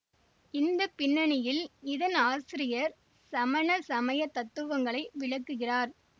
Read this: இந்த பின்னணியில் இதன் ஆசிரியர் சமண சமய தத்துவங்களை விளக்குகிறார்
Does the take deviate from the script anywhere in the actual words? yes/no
no